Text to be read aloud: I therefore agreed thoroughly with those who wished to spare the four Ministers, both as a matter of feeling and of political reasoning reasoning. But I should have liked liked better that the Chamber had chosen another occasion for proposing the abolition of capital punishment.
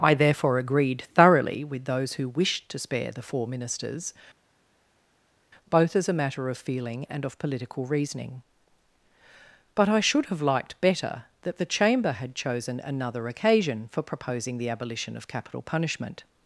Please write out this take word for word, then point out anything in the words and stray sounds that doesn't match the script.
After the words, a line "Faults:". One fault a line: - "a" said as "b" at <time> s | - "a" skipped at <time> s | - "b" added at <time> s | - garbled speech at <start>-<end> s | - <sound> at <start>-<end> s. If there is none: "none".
I therefore agreed thoroughly with those who wished to spare the four Ministers, both as a matter of feeling and of political reasoning. But I should have liked better that the Chamber had chosen another occasion for proposing the abolition of capital punishment.
Faults:
- "reasoning" skipped at 8.4 s
- "liked" skipped at 10.8 s